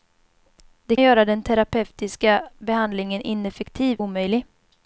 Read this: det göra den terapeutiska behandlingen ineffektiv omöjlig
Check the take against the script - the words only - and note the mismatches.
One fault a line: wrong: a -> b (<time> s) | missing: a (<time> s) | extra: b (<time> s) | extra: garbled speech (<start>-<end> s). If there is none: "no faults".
no faults